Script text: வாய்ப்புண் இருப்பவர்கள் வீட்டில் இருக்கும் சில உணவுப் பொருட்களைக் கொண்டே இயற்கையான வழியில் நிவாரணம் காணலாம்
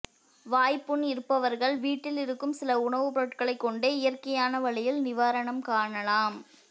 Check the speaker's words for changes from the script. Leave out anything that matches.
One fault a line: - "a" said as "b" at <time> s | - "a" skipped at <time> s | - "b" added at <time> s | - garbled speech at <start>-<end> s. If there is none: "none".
none